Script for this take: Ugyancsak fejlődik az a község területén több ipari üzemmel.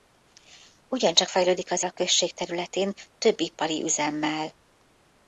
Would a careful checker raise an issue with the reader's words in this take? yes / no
no